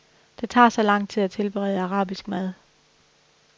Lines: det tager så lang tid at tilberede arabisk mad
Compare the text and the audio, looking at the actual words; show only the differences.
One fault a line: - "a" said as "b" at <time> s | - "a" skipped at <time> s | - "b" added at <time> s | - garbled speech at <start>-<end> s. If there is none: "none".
none